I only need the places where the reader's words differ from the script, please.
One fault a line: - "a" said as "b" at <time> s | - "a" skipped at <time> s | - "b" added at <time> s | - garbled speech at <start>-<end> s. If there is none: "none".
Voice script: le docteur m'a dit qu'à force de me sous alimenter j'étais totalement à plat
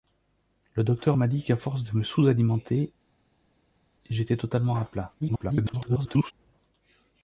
- garbled speech at 5.2-6.3 s